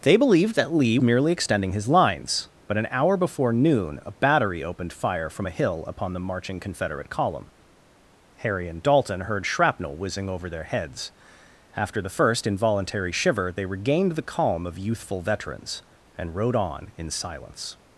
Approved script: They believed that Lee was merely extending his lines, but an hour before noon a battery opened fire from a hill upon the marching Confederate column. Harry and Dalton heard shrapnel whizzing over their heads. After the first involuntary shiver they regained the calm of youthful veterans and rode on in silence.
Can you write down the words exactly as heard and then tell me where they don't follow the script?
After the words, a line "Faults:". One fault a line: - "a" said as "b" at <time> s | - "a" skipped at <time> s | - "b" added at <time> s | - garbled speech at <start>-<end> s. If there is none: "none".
They believed that Lee merely extending his lines, but an hour before noon a battery opened fire from a hill upon the marching Confederate column. Harry and Dalton heard shrapnel whizzing over their heads. After the first involuntary shiver they regained the calm of youthful veterans and rode on in silence.
Faults:
- "was" skipped at 1.0 s